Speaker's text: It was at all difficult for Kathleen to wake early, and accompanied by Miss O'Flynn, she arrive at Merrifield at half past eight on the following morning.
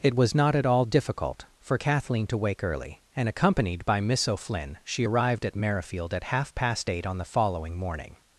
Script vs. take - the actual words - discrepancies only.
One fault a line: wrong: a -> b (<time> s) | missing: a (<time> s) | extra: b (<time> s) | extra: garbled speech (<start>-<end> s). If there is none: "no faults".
extra: not (0.3 s)
wrong: arrive -> arrived (5.0 s)